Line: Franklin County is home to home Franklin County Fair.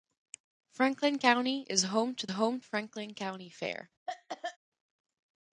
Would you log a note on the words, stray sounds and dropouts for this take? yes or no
yes